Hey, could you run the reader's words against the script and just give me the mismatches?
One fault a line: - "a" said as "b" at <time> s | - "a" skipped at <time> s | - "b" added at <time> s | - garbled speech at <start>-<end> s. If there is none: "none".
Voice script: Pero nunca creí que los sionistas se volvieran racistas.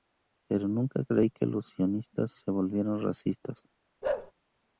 none